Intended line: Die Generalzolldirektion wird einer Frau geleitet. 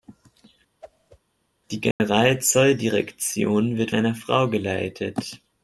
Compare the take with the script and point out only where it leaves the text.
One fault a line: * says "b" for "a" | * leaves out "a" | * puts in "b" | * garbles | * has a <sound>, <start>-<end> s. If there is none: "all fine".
* has a whoosh, 0.8-1.2 s
* has a dropout, 1.9-2.0 s